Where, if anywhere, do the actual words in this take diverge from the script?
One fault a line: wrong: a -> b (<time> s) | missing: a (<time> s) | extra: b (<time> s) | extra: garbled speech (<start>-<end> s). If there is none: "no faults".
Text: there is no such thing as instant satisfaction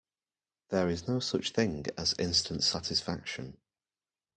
no faults